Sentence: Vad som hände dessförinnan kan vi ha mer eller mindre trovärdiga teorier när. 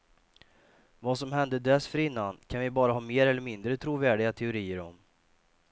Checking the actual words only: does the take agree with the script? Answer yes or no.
no